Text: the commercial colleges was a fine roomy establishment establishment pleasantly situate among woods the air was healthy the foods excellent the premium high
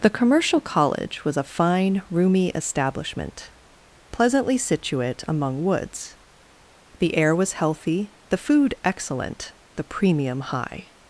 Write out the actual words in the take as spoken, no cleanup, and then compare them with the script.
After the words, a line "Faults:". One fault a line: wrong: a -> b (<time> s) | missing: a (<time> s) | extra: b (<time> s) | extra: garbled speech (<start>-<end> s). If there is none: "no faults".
the commercial college was a fine roomy establishment pleasantly situate among woods the air was healthy the food excellent the premium high
Faults:
wrong: colleges -> college (0.6 s)
missing: establishment (3.5 s)
wrong: foods -> food (8.4 s)